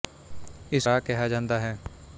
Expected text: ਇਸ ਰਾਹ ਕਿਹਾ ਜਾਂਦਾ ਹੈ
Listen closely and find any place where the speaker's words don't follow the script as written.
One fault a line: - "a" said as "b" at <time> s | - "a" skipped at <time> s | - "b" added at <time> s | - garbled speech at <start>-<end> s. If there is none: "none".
none